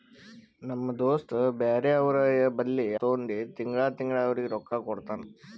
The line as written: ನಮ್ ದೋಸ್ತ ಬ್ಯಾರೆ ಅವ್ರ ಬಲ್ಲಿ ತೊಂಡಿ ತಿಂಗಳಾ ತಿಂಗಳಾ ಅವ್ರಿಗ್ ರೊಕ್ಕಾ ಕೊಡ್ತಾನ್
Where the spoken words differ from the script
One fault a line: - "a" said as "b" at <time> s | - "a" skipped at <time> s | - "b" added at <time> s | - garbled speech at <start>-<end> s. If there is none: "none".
none